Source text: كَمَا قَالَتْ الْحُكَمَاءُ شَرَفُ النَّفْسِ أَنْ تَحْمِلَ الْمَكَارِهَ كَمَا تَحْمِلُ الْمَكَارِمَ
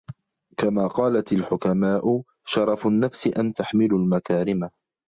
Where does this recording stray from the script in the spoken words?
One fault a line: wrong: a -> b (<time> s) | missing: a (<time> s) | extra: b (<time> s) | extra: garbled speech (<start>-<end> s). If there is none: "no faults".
missing: تَحْمِلَ الْمَكَارِهَ كَمَا (3.5 s)